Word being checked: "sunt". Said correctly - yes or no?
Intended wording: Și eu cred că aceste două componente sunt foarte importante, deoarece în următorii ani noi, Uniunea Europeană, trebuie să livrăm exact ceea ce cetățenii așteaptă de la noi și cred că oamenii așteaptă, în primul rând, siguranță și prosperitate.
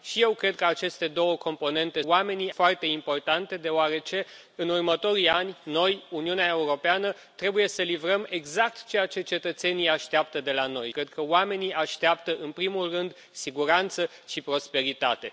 no